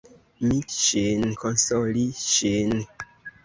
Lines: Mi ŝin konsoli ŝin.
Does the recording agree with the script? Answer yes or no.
yes